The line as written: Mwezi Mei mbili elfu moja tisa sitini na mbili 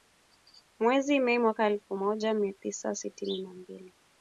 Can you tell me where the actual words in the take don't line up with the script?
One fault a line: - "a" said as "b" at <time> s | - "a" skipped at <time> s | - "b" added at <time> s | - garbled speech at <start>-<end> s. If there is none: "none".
- "mbili" said as "mwaka" at 1.4 s
- "mia" added at 2.3 s